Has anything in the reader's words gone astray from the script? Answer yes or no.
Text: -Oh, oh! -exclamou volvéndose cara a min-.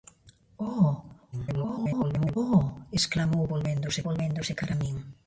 yes